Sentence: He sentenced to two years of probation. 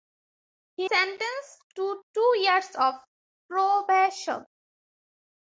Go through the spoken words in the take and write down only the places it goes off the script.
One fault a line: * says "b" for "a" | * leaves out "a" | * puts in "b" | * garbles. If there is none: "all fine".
all fine